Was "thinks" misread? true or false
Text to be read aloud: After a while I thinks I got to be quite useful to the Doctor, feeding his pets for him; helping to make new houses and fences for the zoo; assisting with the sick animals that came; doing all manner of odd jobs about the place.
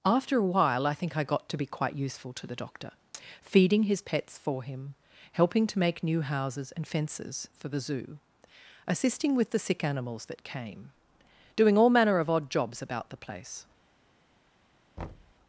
true